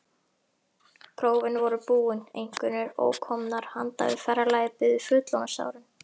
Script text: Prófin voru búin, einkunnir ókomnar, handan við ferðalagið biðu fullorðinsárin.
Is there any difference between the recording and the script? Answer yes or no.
no